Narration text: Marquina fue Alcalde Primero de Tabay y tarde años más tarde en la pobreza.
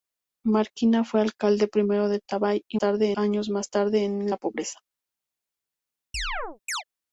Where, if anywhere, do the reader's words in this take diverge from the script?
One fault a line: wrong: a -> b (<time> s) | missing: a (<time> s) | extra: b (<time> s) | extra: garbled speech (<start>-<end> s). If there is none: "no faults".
no faults